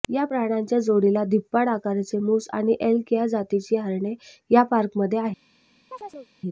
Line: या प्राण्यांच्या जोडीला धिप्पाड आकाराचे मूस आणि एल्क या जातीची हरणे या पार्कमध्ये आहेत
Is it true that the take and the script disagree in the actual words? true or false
false